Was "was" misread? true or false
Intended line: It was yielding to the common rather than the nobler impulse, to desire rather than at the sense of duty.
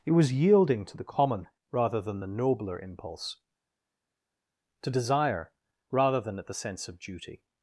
false